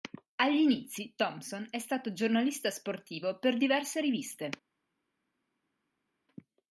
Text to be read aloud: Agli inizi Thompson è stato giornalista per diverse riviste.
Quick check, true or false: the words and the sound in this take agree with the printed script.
false